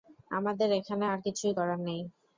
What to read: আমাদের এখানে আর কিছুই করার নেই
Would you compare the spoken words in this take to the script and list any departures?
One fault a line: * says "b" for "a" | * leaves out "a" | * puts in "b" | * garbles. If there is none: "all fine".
all fine